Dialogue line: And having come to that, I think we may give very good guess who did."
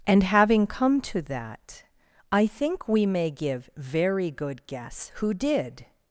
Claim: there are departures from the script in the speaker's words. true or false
false